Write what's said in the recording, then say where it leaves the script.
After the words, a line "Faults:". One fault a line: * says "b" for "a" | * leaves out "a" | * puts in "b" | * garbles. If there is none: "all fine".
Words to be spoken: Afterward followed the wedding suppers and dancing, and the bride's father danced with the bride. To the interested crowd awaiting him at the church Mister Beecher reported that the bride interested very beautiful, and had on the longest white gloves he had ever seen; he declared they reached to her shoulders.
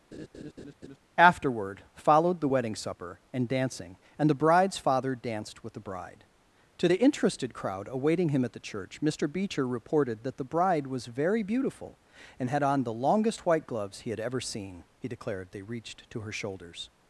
Afterward followed the wedding supper and dancing, and the bride's father danced with the bride. To the interested crowd awaiting him at the church Mister Beecher reported that the bride was very beautiful, and had on the longest white gloves he had ever seen; he declared they reached to her shoulders.
Faults:
* says "supper" for "suppers"
* says "was" for "interested"